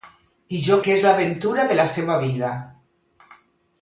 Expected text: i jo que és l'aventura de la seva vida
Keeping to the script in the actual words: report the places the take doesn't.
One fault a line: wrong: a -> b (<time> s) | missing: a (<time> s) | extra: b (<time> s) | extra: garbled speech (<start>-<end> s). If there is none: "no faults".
no faults